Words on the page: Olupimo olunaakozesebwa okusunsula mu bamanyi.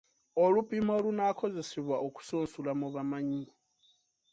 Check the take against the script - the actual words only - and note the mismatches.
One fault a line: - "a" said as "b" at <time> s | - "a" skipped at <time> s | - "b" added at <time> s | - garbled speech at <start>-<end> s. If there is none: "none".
none